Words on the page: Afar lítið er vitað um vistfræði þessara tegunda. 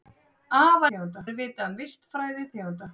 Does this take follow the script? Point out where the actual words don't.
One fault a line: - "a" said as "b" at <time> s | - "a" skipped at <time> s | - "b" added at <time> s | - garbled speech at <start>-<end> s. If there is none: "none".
- "lítið" said as "tegunda" at 0.9 s
- "þessara" skipped at 2.5 s